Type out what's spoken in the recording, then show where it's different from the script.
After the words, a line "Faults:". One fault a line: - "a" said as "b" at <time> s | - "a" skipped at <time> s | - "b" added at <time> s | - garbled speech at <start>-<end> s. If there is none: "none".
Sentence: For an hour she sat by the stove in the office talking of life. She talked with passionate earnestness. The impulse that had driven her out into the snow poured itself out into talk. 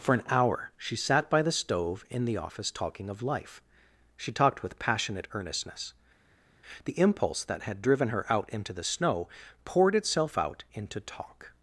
For an hour she sat by the stove in the office talking of life. She talked with passionate earnestness. The impulse that had driven her out into the snow poured itself out into talk.
Faults:
none